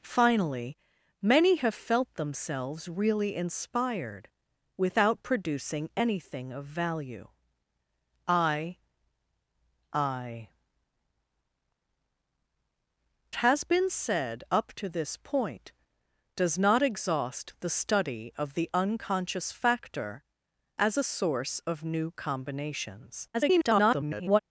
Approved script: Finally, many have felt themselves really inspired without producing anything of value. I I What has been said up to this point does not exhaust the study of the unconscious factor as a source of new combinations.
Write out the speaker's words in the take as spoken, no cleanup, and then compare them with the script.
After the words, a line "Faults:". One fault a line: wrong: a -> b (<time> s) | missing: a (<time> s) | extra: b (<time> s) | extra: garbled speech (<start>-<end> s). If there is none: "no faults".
Finally, many have felt themselves really inspired without producing anything of value. I I Has been said up to this point does not exhaust the study of the unconscious factor as a source of new combinations. [garbled]
Faults:
missing: What (10.5 s)
extra: garbled speech (23.3-24.4 s)